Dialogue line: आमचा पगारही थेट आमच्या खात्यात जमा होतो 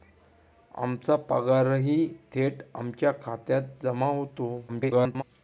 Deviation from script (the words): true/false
true